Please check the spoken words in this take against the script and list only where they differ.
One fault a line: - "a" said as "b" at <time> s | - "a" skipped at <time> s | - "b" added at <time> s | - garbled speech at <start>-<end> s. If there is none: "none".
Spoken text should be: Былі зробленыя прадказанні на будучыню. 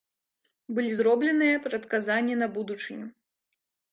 none